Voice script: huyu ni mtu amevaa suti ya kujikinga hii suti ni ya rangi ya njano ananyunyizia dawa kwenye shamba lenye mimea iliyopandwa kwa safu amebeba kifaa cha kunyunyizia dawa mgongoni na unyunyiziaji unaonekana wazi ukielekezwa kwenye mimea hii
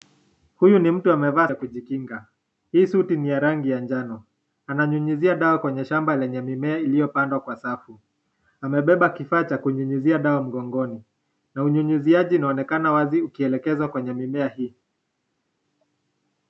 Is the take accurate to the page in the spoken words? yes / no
no